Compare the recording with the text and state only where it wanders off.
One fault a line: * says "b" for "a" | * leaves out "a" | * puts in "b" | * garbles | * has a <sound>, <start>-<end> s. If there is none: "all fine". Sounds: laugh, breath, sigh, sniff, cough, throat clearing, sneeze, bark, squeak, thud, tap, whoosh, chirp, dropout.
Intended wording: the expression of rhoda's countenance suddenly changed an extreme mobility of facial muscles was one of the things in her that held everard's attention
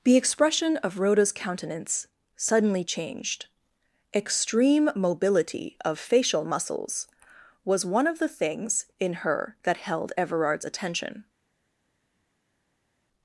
* leaves out "an"